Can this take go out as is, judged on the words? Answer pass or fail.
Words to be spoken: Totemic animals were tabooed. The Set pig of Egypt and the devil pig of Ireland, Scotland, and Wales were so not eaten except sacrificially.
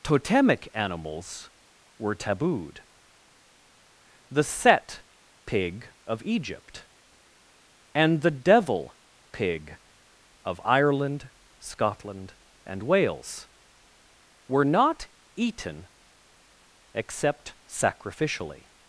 fail